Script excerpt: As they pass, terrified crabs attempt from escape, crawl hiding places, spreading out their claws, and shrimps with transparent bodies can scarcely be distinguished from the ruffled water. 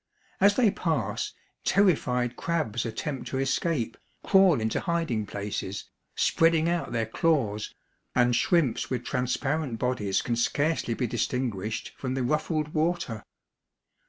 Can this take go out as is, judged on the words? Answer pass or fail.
fail